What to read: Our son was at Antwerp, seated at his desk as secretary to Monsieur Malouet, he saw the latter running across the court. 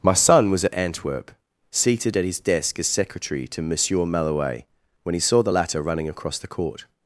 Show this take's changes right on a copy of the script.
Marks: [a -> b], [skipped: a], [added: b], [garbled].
[Our -> My] son was at Antwerp, seated at his desk as secretary to Monsieur Malouet, [added: when] he saw the latter running across the court.